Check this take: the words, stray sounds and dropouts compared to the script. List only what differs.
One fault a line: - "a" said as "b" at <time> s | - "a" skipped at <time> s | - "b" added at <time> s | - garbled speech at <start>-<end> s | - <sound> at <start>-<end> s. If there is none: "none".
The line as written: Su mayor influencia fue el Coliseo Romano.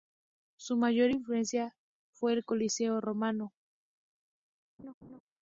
- laugh at 4.8-5.2 s